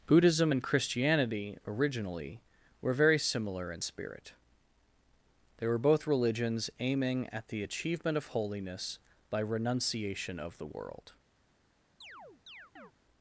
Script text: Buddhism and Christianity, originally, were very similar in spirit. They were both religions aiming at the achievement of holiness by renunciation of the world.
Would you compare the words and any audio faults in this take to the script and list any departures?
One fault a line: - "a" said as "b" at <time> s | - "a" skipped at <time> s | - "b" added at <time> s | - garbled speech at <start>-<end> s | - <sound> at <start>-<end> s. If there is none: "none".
- chirp at 12.0-12.9 s